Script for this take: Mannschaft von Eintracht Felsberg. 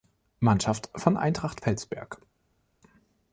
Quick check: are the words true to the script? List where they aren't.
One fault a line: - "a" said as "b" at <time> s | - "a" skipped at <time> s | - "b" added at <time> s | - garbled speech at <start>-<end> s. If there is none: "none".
none